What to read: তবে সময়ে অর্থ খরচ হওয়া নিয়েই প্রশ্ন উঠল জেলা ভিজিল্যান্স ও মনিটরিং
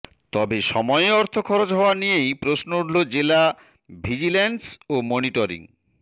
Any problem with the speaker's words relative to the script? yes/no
no